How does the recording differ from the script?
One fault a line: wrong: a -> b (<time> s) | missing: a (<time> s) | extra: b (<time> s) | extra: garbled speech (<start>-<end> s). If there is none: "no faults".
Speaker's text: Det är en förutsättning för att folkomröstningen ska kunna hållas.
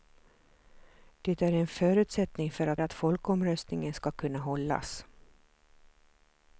extra: att (2.8 s)